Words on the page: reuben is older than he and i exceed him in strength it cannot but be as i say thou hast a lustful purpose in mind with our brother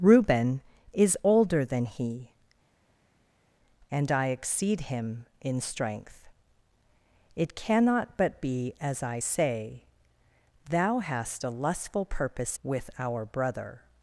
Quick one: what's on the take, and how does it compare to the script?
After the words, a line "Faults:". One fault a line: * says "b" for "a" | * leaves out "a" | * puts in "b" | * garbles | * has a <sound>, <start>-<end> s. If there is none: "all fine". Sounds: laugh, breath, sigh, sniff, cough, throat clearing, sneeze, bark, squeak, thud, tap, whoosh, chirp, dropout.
reuben is older than he and i exceed him in strength it cannot but be as i say thou hast a lustful purpose with our brother
Faults:
* leaves out "in mind"